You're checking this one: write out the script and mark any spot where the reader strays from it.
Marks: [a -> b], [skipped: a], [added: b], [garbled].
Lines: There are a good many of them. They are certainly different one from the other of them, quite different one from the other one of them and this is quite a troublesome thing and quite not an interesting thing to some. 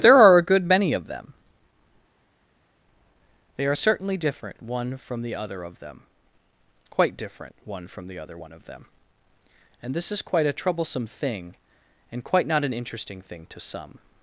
There are a good many of them. They are certainly different one from the other of them, quite different one from the other one of them and this is quite a troublesome thing and quite not an interesting thing to some.